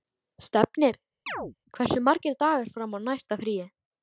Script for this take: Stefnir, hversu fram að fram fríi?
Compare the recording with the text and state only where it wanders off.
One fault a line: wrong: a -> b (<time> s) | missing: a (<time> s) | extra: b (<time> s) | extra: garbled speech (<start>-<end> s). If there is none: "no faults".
extra: margir dagar (2.1 s)
wrong: fram -> næsta (3.1 s)